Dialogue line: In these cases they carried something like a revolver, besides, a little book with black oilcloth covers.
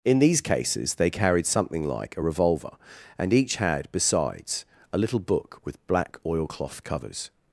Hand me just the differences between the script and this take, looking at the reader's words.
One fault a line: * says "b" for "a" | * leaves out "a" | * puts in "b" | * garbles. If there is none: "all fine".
* puts in "and each had"